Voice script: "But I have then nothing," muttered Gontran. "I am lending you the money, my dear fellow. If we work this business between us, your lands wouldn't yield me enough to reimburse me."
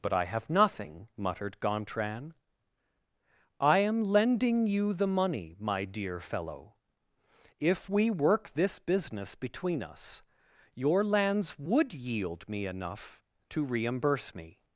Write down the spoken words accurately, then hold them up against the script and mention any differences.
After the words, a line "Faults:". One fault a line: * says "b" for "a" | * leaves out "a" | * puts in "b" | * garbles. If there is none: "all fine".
"But I have nothing," muttered Gontran. "I am lending you the money, my dear fellow. If we work this business between us, your lands would yield me enough to reimburse me."
Faults:
* leaves out "then"
* says "would" for "wouldn't"